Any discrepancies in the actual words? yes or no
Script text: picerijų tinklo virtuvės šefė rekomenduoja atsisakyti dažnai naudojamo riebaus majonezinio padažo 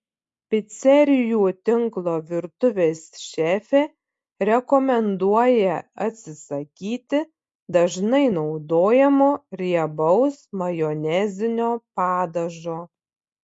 no